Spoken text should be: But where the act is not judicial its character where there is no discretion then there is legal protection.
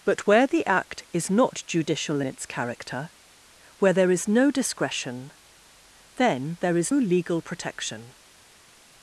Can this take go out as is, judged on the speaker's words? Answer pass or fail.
pass